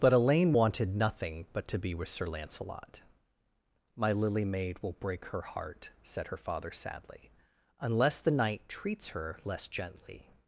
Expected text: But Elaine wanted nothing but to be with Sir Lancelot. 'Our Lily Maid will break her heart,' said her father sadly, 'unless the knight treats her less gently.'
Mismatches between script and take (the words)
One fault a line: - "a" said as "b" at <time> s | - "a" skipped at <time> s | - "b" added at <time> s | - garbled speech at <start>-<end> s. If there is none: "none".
- "Our" said as "My" at 4.0 s